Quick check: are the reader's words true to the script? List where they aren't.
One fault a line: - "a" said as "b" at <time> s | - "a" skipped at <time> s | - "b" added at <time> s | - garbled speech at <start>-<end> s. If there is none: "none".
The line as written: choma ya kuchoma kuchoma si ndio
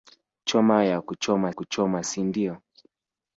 none